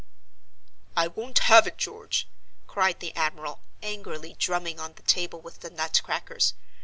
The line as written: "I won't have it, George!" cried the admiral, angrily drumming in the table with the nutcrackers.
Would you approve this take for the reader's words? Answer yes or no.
no